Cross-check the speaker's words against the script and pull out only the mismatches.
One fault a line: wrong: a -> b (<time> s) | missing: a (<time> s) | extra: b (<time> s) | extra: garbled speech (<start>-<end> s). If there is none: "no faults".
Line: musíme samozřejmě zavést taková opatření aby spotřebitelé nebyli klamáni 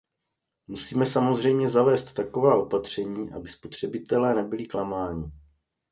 no faults